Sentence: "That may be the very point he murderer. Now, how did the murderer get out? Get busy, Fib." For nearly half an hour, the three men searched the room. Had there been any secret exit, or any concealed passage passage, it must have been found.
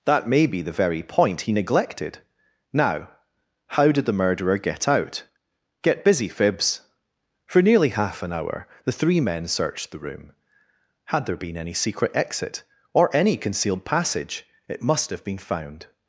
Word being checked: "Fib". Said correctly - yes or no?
no